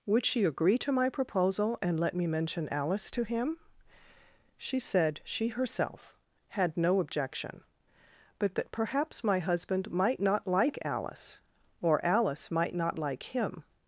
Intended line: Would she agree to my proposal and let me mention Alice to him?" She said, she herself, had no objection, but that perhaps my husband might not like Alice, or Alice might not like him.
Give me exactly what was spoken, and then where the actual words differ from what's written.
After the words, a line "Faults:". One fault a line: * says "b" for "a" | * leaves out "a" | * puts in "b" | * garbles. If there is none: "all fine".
Would she agree to my proposal and let me mention Alice to him?" She said, she herself, had no objection, but that perhaps my husband might not like Alice, or Alice might not like him.
Faults:
all fine